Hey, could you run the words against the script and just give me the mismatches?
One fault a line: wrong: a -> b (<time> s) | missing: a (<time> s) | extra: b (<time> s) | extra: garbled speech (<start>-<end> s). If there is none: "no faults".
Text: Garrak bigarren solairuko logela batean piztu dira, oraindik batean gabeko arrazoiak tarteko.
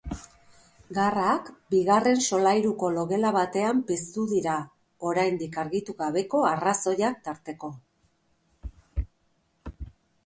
wrong: batean -> argitu (5.7 s)